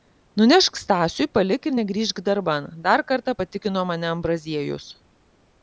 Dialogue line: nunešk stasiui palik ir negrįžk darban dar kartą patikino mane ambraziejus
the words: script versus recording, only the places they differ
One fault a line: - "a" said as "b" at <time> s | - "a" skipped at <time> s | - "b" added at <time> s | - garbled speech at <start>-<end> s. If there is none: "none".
none